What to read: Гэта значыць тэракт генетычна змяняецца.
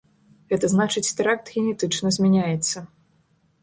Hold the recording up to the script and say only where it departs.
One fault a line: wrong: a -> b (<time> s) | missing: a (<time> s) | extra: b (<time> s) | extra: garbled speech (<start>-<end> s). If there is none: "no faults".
no faults